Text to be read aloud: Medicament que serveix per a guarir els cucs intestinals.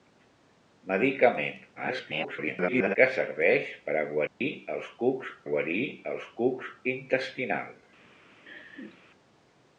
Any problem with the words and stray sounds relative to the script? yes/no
yes